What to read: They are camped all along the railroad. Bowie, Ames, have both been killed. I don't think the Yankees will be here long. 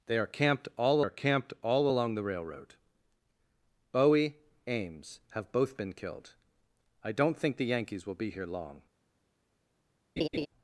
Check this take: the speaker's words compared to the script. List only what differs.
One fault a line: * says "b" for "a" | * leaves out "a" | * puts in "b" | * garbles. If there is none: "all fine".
* puts in "are camped all"